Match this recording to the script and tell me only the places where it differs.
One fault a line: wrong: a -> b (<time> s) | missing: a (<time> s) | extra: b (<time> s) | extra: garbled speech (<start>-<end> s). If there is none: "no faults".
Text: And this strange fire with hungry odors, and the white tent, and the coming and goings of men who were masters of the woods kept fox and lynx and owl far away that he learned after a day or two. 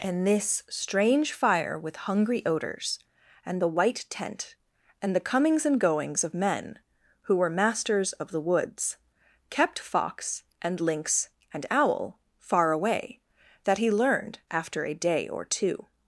wrong: coming -> comings (5.2 s)